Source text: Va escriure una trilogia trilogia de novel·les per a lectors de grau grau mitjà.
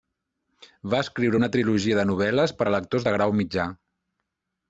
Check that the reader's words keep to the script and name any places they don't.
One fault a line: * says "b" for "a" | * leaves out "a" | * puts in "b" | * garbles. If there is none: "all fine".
* leaves out "trilogia"
* leaves out "grau"